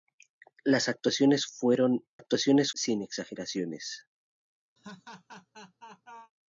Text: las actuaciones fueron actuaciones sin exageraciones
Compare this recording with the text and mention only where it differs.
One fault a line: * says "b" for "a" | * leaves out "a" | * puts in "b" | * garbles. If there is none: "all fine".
all fine